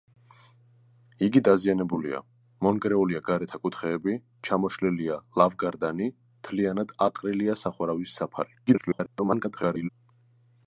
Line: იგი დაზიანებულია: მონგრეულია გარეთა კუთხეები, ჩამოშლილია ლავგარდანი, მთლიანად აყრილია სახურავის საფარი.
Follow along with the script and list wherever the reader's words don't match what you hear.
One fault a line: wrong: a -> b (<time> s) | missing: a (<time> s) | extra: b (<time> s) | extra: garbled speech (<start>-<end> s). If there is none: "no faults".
extra: garbled speech (8.7-9.9 s)